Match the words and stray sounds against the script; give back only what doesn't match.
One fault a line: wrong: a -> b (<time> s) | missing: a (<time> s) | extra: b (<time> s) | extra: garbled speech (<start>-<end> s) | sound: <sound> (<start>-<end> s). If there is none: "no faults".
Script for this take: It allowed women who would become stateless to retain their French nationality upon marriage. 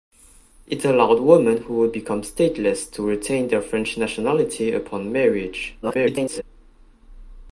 extra: garbled speech (5.8-6.4 s)